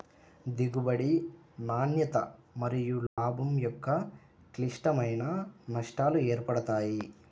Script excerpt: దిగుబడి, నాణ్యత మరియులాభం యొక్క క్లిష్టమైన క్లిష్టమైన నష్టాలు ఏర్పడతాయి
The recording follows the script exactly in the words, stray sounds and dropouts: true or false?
false